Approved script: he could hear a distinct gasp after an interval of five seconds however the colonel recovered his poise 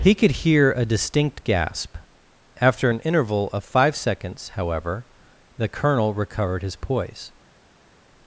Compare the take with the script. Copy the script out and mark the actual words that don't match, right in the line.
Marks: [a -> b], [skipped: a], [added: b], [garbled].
he could hear a distinct gasp after an interval of five seconds however the colonel recovered his poise